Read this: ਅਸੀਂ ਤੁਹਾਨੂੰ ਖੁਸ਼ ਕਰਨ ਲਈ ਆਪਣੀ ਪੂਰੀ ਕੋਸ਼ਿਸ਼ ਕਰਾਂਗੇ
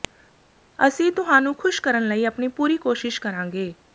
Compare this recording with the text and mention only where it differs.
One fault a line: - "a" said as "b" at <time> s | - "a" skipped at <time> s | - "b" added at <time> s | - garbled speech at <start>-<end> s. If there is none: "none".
none